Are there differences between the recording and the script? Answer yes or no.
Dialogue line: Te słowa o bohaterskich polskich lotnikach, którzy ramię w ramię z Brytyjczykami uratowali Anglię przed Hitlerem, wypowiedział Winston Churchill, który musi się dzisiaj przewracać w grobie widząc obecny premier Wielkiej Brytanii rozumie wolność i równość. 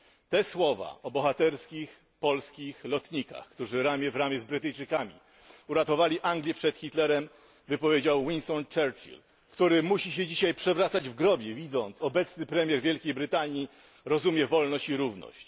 no